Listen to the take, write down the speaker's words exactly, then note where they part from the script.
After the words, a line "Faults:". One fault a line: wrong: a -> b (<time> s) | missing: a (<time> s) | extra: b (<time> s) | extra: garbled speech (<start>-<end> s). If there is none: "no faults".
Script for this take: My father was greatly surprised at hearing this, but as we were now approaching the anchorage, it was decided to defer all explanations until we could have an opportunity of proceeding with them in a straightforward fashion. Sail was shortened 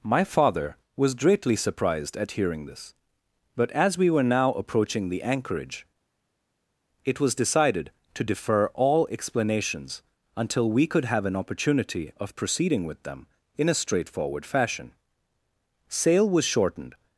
My father was greatly surprised at hearing this, but as we were now approaching the anchorage, it was decided to defer all explanations until we could have an opportunity of proceeding with them in a straightforward fashion. Sail was shortened
Faults:
no faults